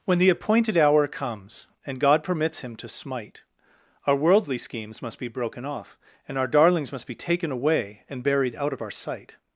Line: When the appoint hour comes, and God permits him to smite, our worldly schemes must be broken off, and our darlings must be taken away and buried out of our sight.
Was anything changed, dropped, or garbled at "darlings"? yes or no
no